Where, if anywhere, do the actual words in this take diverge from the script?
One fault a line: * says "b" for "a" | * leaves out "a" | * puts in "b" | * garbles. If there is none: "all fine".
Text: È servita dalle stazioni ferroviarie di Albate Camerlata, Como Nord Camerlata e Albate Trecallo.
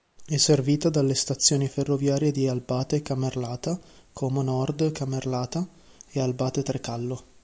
all fine